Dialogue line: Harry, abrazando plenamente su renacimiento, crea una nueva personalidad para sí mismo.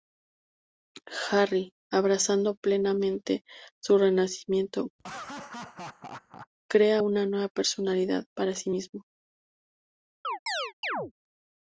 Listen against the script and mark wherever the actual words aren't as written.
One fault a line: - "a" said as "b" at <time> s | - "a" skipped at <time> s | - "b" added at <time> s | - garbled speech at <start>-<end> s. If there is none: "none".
none